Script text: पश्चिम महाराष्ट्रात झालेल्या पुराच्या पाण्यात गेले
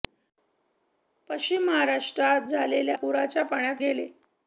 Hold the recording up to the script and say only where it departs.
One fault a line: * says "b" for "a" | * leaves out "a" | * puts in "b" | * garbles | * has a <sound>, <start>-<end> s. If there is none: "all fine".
all fine